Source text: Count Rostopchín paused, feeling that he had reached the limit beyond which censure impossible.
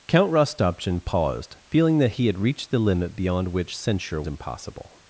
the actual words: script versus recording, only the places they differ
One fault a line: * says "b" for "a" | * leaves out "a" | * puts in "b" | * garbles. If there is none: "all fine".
all fine